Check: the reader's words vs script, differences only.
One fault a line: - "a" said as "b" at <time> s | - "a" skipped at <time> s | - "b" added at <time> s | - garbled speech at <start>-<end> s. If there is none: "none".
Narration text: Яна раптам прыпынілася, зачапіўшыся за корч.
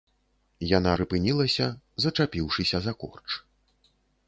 - "раптам" skipped at 0.9 s